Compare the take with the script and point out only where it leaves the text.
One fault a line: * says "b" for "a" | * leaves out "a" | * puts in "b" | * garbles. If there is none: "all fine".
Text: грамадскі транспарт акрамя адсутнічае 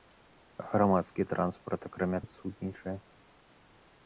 all fine